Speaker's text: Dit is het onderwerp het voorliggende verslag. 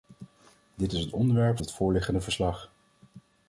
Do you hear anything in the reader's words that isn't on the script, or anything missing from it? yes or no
no